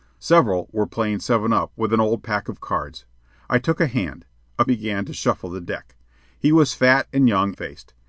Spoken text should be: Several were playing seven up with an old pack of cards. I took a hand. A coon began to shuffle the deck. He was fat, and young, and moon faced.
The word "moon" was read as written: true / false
false